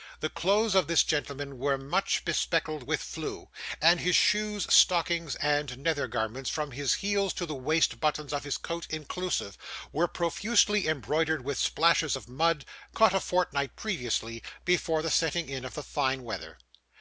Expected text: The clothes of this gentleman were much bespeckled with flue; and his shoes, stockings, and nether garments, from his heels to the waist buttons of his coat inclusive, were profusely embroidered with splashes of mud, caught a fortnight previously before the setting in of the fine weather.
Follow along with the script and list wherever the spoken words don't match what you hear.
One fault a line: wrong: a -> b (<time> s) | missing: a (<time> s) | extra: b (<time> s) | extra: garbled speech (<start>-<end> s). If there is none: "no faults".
no faults